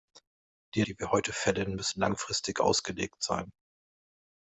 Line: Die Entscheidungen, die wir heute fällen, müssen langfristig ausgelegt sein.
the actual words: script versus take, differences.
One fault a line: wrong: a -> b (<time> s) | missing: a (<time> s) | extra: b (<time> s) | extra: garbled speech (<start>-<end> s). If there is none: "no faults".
missing: Entscheidungen (0.8 s)